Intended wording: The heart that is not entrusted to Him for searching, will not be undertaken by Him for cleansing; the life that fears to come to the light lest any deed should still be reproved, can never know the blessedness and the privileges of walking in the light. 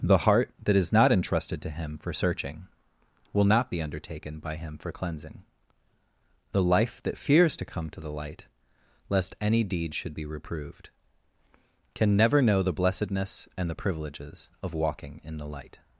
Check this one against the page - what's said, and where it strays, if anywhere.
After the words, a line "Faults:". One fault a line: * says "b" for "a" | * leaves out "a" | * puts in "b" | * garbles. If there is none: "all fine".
The heart that is not entrusted to Him for searching, will not be undertaken by Him for cleansing; the life that fears to come to the light lest any deed should be reproved, can never know the blessedness and the privileges of walking in the light.
Faults:
* leaves out "still"